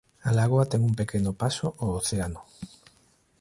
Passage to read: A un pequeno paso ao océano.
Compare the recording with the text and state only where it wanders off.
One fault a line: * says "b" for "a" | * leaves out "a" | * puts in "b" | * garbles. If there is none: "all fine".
* puts in "lagoa ten"